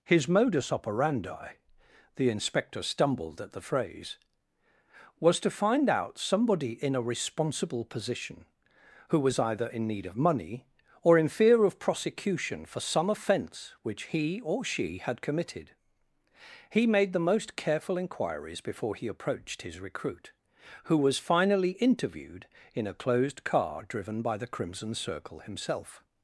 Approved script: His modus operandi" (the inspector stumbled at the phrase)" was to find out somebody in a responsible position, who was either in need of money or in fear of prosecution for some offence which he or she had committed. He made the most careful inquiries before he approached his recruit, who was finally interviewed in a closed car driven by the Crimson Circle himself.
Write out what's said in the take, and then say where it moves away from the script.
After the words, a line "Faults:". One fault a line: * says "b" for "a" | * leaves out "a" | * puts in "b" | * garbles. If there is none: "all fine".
His modus operandi" (the inspector stumbled at the phrase)" was to find out somebody in a responsible position, who was either in need of money or in fear of prosecution for some offence which he or she had committed. He made the most careful inquiries before he approached his recruit, who was finally interviewed in a closed car driven by the Crimson Circle himself.
Faults:
all fine